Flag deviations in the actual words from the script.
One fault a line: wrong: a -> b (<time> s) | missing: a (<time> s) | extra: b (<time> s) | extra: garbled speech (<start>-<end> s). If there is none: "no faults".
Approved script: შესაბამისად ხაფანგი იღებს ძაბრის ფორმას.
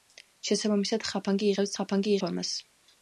wrong: ძაბრის -> ხაფანგი (1.8 s)